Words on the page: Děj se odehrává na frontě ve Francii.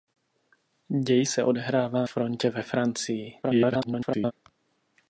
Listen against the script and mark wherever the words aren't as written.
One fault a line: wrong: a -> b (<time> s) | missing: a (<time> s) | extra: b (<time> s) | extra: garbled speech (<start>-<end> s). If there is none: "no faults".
missing: na (2.1 s)
extra: garbled speech (3.4-4.3 s)